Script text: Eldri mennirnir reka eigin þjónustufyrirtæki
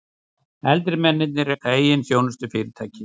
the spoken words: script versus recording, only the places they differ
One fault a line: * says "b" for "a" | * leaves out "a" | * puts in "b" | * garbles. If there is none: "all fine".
all fine